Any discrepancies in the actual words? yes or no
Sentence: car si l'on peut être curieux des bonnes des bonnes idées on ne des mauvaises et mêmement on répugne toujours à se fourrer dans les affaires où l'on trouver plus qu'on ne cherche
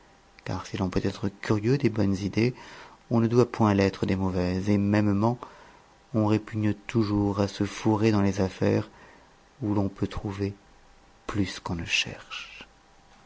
yes